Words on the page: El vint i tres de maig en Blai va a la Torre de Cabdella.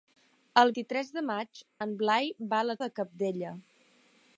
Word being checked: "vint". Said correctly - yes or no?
no